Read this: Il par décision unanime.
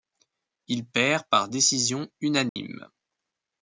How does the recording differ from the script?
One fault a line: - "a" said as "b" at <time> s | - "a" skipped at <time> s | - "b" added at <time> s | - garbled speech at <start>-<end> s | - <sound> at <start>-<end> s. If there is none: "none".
- "perd" added at 0.9 s
- dropout at 2.5-2.6 s